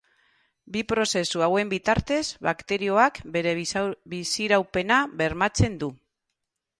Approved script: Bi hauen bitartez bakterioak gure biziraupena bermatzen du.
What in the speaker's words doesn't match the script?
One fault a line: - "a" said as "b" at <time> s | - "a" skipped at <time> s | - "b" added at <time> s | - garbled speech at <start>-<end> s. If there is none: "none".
- "prozesu" added at 0.9 s
- "gure" said as "bere" at 3.4 s